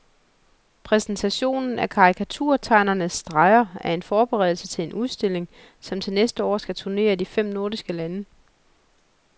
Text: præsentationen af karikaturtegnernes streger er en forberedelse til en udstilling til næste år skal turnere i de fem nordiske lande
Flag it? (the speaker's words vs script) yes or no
yes